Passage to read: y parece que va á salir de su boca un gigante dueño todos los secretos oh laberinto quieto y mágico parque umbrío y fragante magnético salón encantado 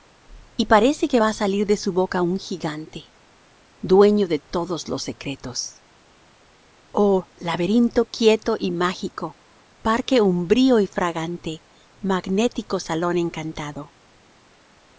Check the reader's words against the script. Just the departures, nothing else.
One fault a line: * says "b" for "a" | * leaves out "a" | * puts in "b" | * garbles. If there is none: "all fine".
* puts in "de"